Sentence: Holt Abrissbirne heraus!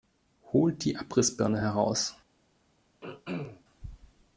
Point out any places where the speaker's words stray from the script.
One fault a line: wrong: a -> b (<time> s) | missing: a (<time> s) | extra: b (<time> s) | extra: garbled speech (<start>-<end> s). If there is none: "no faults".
extra: die (0.8 s)